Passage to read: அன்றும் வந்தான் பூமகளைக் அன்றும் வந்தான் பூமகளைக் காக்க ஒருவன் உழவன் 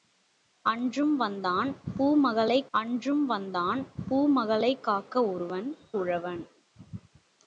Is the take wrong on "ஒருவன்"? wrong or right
right